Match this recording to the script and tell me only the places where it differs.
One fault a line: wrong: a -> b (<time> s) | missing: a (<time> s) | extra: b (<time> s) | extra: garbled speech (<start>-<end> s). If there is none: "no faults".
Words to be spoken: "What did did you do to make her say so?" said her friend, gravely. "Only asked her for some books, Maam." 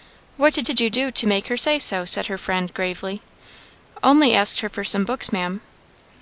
no faults